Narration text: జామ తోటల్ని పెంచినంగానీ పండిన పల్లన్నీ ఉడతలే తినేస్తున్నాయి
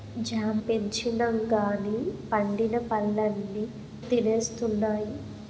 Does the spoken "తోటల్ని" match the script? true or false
false